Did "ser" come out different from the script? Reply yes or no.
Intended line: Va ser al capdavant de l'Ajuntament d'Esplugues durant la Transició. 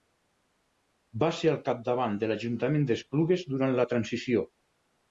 no